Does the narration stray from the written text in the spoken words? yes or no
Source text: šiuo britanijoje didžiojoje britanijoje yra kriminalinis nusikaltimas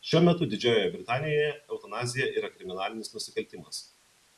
yes